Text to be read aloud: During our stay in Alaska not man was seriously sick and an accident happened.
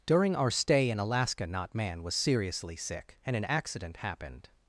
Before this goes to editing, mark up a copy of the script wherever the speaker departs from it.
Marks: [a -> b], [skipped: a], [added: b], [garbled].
During our stay in Alaska not man was seriously sick and an accident happened.